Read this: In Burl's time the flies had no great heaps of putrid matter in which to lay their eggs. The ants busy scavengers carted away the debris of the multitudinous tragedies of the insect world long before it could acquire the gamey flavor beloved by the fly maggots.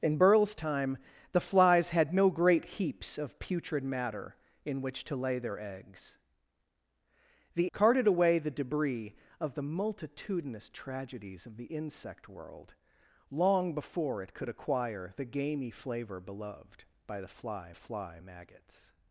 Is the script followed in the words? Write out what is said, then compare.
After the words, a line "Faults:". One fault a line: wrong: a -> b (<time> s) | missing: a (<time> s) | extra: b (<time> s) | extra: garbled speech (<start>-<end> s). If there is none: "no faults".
In Burl's time the flies had no great heaps of putrid matter in which to lay their eggs. The carted away the debris of the multitudinous tragedies of the insect world long before it could acquire the gamey flavor beloved by the fly fly maggots.
Faults:
missing: ants busy scavengers (7.7 s)
extra: fly (17.7 s)